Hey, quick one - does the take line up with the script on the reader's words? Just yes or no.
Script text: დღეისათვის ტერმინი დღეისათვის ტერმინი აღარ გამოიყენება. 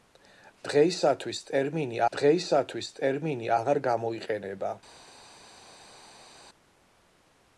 yes